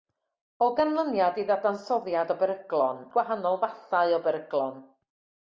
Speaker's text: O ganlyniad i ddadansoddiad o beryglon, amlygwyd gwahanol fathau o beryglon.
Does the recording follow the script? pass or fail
fail